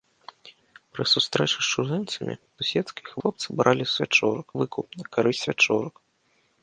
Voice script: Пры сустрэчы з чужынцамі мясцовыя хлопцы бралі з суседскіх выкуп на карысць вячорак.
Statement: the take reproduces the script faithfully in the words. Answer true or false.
false